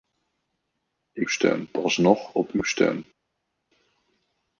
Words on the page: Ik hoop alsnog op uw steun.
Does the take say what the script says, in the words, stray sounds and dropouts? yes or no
no